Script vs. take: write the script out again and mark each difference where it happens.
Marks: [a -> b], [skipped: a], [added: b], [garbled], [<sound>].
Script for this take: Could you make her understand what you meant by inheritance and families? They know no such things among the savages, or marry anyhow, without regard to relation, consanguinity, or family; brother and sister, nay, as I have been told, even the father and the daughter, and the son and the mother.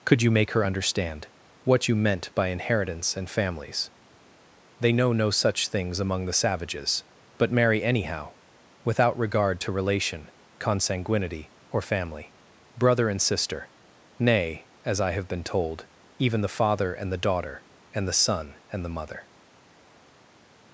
Could you make her understand what you meant by inheritance and families? They know no such things among the savages, [or -> but] marry anyhow, without regard to relation, consanguinity, or family; brother and sister, nay, as I have been told, even the father and the daughter, and the son and the mother.